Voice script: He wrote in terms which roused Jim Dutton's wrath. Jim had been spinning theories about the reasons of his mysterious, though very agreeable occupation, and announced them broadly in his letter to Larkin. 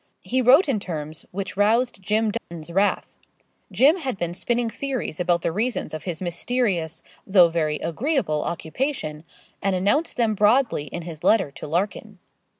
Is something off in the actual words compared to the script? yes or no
no